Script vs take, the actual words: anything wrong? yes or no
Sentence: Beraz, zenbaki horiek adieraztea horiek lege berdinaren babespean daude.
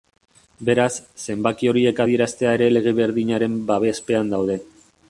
yes